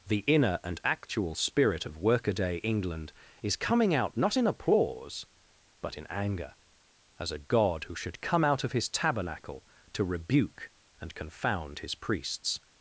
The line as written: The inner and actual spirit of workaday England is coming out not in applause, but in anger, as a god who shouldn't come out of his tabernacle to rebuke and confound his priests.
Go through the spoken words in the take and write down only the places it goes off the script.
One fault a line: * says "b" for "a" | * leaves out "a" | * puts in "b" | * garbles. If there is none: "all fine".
* says "should" for "shouldn't"